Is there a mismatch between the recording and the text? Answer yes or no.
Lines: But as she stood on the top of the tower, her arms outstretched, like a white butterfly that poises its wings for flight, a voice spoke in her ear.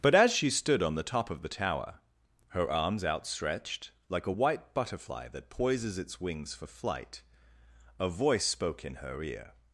no